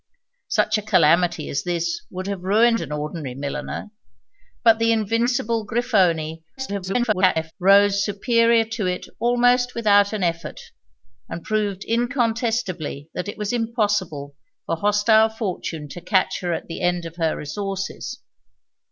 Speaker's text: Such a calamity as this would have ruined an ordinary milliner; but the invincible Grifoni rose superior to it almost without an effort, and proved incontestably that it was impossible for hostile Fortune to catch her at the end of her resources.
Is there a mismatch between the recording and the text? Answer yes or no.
yes